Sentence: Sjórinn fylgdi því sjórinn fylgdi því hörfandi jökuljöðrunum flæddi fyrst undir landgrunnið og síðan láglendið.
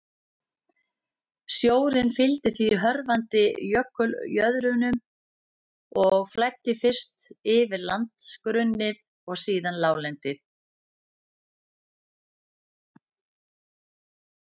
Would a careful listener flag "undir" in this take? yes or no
yes